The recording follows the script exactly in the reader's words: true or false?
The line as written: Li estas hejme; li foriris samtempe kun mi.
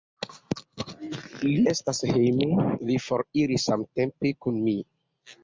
true